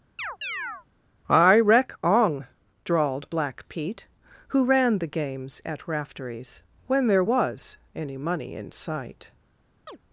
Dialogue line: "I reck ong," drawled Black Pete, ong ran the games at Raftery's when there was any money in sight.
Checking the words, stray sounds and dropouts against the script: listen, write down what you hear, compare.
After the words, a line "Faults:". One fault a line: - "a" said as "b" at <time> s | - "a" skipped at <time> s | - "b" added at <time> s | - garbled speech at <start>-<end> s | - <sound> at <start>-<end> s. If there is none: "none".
"I reck ong," drawled Black Pete, who ran the games at Raftery's when there was any money in sight.
Faults:
- chirp at 0.2-0.9 s
- "ong" said as "who" at 4.5 s
- chirp at 9.9-10.0 s